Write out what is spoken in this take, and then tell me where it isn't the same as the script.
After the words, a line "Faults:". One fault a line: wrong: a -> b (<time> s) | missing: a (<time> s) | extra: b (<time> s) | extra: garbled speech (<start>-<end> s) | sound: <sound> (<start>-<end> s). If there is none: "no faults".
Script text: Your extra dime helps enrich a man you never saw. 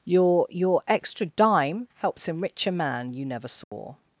Your your extra dime helps enrich a man you never saw.
Faults:
extra: your (0.5 s)
sound: dropout (3.6-3.7 s)